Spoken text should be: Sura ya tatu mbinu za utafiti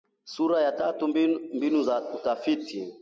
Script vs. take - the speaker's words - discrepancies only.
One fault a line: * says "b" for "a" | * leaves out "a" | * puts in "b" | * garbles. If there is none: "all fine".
all fine